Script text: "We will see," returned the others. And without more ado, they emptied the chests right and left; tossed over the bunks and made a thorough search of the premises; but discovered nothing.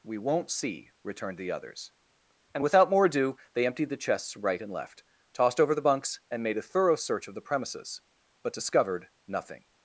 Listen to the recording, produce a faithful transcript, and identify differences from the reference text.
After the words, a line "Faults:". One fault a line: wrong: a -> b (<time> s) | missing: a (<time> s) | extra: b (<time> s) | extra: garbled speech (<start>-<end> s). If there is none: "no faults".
"We won't see," returned the others. And without more ado, they emptied the chests right and left; tossed over the bunks and made a thorough search of the premises; but discovered nothing.
Faults:
wrong: will -> won't (0.2 s)